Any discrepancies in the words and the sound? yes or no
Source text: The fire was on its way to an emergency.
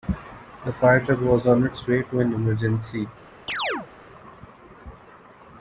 yes